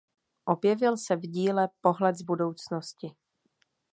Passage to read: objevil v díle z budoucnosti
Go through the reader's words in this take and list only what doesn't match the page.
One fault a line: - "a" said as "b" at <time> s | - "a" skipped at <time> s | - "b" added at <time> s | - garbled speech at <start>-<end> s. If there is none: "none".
- "se" added at 1.0 s
- "pohled" added at 1.8 s